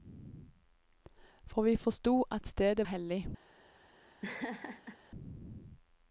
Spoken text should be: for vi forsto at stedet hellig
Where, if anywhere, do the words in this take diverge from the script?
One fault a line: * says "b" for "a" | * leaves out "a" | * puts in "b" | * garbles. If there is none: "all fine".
all fine